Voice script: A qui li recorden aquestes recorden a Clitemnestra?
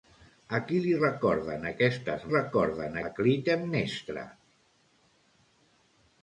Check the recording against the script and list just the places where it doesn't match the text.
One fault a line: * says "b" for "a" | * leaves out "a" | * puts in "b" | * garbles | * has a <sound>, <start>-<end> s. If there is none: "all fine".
all fine